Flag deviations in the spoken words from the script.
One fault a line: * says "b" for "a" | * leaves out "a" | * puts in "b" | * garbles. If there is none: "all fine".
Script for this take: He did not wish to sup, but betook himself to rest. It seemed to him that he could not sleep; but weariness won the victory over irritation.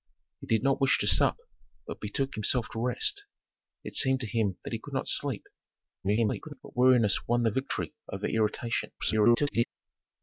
* garbles
* garbles